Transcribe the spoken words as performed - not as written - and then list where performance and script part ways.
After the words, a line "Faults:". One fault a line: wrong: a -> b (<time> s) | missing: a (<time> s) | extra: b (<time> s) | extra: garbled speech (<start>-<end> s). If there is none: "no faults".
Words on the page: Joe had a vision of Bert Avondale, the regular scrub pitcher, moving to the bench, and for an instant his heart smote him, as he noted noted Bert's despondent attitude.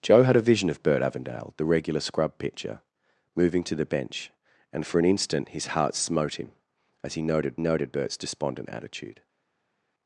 Joe had a vision of Bert Avondale, the regular scrub pitcher, moving to the bench, and for an instant his heart smote him, as he noted noted Bert's despondent attitude.
Faults:
no faults